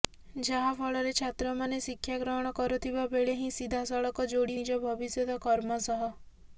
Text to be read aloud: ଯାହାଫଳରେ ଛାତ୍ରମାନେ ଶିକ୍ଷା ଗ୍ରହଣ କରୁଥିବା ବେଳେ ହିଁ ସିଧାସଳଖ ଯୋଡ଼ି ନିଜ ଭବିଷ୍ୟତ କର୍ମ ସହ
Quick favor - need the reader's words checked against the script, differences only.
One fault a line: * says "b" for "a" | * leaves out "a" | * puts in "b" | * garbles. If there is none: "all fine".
all fine